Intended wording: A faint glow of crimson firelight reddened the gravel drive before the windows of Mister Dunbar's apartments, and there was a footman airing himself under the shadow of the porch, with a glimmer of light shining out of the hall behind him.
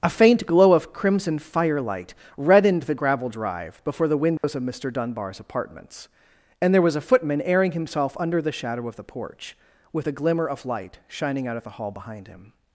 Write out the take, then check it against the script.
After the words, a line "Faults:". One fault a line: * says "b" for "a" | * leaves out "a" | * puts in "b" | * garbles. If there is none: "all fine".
A faint glow of crimson firelight reddened the gravel drive before the windows of Mister Dunbar's apartments, and there was a footman airing himself under the shadow of the porch, with a glimmer of light shining out of the hall behind him.
Faults:
all fine